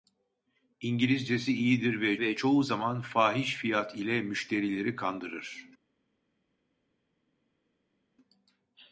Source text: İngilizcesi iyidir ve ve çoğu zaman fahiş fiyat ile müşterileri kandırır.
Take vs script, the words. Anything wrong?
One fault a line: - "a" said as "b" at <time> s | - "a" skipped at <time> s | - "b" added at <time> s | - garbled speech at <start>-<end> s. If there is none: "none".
none